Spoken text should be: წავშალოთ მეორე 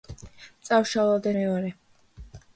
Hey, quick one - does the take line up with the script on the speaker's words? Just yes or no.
yes